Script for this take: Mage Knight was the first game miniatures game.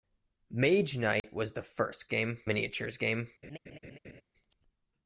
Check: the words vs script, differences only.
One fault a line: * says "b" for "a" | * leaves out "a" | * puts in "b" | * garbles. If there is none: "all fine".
all fine